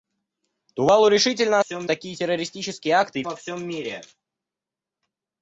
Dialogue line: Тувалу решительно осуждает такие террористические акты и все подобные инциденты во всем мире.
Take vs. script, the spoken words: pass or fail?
fail